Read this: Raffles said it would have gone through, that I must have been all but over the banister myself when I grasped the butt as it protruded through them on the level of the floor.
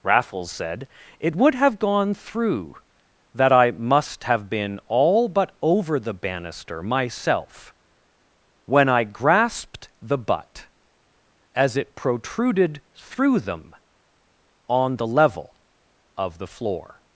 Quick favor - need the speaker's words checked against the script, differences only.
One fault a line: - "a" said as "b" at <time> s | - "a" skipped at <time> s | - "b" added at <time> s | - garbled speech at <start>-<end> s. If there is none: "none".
none